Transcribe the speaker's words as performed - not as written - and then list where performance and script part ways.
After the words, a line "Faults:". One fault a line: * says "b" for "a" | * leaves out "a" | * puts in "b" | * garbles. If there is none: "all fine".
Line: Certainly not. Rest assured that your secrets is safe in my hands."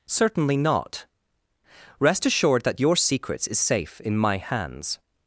Certainly not. Rest assured that your secrets is safe in my hands."
Faults:
all fine